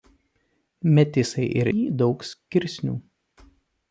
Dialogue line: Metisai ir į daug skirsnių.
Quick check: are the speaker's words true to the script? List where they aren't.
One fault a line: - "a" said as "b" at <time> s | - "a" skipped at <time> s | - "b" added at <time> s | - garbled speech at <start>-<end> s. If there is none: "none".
none